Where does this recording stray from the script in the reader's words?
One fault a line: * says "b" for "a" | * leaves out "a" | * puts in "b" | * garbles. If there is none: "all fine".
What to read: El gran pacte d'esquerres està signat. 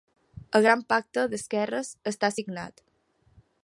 all fine